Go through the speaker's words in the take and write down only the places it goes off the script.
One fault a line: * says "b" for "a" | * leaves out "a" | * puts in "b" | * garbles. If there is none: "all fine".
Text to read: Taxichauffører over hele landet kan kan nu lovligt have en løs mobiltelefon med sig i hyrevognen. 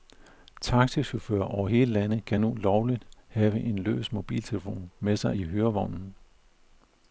* leaves out "kan"